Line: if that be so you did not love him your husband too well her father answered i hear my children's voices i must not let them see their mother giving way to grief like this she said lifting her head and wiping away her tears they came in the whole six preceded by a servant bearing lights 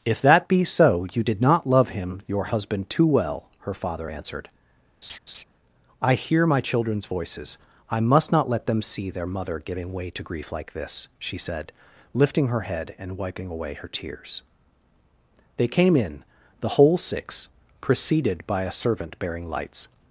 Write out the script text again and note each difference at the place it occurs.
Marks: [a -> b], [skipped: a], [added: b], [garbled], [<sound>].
if that be so you did not love him your husband too well her father answered [laugh] i hear my children's voices i must not let them see their mother giving way to grief like this she said lifting her head and wiping away her tears they came in the whole six preceded by a servant bearing lights